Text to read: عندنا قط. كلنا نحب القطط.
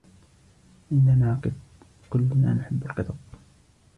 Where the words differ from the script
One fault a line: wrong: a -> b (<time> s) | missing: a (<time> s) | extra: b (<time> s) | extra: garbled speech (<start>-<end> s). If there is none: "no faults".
no faults